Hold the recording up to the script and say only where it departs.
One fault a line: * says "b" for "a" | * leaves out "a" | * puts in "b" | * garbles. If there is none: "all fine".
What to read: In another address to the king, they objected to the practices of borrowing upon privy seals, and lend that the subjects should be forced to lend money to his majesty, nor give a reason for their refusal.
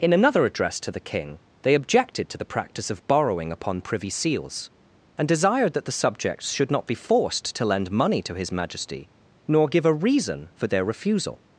* says "practice" for "practices"
* says "desired" for "lend"
* puts in "not"